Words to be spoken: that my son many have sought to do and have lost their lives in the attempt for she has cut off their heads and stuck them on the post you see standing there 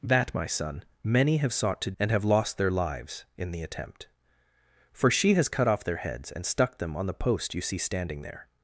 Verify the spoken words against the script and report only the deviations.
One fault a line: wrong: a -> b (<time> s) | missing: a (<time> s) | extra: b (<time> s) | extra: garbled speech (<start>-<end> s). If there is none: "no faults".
missing: do (1.9 s)